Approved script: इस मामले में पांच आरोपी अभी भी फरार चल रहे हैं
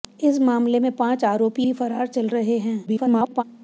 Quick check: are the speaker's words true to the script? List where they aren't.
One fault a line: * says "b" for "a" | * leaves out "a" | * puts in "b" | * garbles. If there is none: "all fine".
* leaves out "अभी"
* garbles